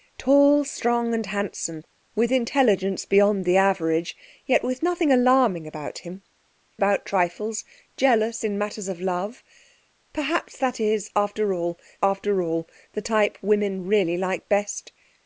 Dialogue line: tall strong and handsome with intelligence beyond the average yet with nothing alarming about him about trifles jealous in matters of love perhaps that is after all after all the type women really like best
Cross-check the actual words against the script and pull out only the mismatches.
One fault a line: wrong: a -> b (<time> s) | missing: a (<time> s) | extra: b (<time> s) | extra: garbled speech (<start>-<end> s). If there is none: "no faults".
no faults